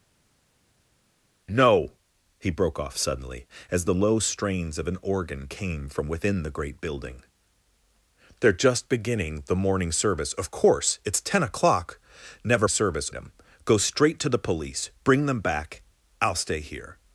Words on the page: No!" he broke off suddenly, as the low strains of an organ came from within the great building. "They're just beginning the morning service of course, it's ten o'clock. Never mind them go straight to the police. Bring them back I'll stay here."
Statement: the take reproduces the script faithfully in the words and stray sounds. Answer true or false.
false